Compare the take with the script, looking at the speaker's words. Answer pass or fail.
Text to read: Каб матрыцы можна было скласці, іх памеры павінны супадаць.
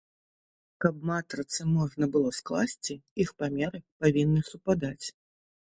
pass